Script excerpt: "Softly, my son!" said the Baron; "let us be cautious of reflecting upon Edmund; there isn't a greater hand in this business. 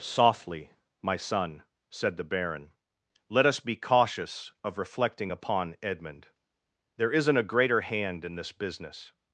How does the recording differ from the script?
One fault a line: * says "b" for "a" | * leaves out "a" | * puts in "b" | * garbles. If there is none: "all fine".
all fine